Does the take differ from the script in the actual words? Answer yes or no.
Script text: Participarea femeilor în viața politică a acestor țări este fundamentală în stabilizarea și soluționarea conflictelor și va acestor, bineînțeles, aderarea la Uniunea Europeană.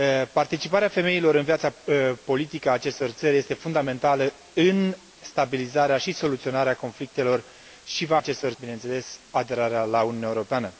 no